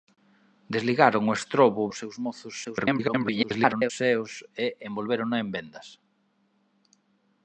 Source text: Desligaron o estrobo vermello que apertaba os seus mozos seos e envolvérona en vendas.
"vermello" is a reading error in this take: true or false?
true